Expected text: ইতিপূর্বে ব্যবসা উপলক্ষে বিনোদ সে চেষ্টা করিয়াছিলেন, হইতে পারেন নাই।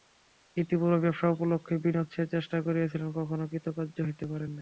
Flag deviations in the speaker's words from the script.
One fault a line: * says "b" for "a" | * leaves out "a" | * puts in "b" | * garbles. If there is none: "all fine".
* puts in "কখনো কৃতকার্য"